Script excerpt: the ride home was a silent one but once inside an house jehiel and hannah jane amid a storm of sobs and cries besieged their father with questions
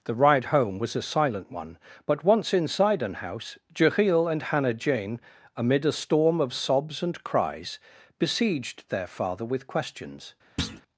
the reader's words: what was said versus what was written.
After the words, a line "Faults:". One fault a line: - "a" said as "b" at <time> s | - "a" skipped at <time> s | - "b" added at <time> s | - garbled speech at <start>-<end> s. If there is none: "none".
the ride home was a silent one but once inside an house jehiel and hannah jane amid a storm of sobs and cries besieged their father with questions
Faults:
none